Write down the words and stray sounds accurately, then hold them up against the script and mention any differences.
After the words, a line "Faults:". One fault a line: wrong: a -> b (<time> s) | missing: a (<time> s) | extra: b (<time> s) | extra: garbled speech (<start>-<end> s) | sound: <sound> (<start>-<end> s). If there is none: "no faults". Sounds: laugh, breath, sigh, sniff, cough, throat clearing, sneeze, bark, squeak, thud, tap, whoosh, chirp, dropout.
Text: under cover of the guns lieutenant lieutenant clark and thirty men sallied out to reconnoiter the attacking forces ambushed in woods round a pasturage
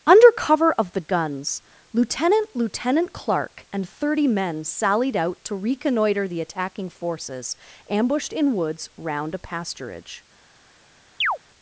under cover of the guns lieutenant lieutenant clark and thirty men sallied out to reconnoiter the attacking forces ambushed in woods round a pasturage
Faults:
sound: chirp (11.2-11.4 s)